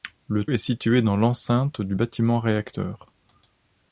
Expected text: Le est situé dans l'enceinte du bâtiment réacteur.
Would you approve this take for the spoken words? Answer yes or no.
yes